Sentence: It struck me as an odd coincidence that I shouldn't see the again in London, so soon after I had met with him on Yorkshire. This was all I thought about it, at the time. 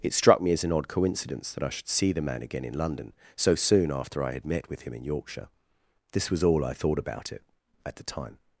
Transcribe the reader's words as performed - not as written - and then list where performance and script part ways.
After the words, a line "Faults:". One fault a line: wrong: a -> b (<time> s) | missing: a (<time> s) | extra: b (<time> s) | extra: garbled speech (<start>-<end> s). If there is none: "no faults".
It struck me as an odd coincidence that I should see the man again in London, so soon after I had met with him in Yorkshire. This was all I thought about it, at the time.
Faults:
wrong: shouldn't -> should (1.7 s)
extra: man (2.2 s)
wrong: on -> in (4.9 s)